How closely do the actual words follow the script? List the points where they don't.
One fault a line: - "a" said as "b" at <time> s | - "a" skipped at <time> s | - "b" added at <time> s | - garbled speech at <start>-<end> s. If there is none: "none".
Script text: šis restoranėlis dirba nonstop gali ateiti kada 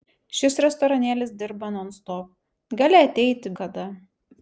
none